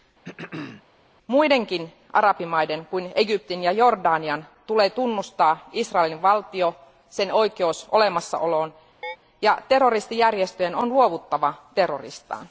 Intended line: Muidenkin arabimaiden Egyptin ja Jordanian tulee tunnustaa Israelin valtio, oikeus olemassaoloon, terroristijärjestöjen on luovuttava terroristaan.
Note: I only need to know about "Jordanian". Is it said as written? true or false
true